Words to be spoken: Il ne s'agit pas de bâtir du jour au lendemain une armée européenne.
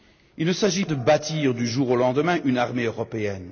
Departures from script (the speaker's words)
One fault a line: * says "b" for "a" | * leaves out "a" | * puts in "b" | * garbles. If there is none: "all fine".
* leaves out "pas"